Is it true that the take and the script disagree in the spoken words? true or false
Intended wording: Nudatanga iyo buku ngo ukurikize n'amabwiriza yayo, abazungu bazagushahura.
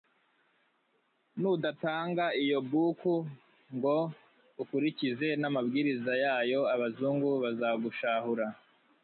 false